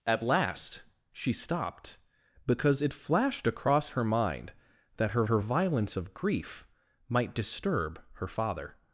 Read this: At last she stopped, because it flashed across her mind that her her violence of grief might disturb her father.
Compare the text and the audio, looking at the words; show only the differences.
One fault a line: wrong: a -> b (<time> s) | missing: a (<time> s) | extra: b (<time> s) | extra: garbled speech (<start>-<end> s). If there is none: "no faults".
no faults